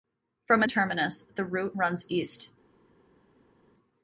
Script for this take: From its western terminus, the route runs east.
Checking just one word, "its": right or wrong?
wrong